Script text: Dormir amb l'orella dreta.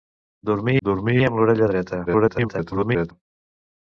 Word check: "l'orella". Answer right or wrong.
right